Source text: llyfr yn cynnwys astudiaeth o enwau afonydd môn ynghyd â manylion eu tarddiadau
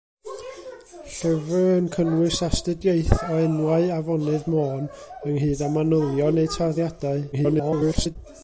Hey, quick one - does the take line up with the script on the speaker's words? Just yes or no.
no